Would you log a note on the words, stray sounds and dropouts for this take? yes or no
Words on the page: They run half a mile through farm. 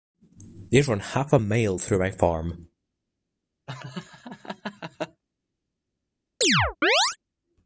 yes